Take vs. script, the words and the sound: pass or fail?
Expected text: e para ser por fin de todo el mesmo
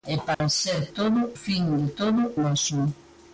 fail